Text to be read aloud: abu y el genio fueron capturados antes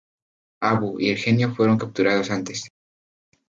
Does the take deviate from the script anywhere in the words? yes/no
no